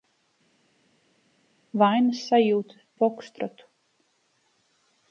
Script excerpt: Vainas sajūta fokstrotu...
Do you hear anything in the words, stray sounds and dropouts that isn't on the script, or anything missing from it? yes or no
no